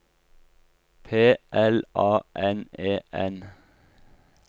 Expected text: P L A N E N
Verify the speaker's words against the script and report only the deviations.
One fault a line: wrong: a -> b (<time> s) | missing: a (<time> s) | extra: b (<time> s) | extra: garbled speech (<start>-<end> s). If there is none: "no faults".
no faults